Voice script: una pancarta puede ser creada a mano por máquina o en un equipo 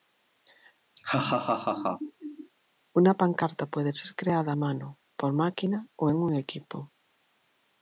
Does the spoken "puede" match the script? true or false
true